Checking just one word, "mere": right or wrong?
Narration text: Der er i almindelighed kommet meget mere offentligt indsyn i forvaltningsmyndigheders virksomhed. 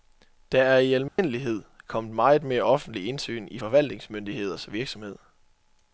right